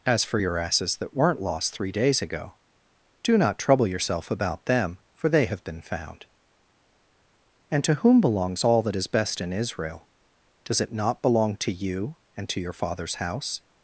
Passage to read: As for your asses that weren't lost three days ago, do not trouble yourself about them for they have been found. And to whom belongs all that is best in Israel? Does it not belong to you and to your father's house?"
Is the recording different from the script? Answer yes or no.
no